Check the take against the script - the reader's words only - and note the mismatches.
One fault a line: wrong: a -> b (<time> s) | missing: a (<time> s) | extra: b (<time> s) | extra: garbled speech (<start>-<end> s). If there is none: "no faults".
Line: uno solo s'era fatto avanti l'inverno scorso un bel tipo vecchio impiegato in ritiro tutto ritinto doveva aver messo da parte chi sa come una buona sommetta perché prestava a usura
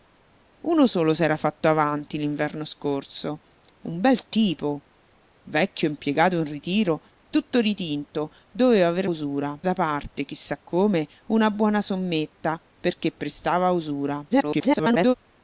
wrong: messo -> usura (9.0 s)
extra: garbled speech (14.3-15.1 s)